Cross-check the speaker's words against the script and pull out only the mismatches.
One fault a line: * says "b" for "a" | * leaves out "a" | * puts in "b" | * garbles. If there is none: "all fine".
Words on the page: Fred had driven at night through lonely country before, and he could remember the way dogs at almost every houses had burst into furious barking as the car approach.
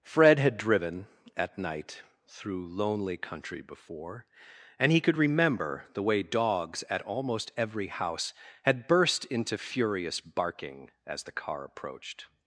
* says "house" for "houses"
* says "approached" for "approach"